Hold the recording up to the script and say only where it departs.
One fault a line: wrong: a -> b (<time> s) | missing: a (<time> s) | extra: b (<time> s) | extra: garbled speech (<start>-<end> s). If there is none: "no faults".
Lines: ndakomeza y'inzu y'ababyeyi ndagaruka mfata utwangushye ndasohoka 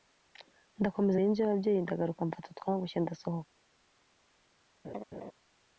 no faults